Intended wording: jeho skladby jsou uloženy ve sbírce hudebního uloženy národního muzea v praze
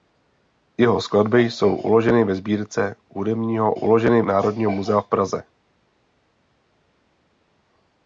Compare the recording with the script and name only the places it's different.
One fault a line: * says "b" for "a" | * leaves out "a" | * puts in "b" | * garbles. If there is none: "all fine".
all fine